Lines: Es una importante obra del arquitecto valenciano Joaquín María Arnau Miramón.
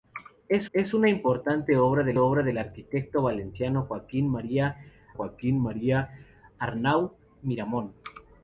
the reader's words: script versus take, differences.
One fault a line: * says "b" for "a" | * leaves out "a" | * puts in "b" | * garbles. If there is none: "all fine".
* puts in "es"
* puts in "obra del"
* puts in "Joaquín María"